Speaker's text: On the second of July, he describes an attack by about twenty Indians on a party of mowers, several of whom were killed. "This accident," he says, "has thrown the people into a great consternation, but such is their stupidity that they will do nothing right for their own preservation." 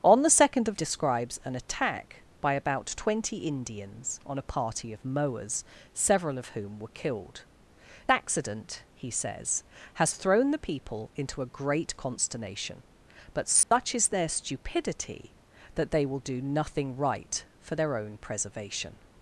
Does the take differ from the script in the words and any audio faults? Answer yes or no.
yes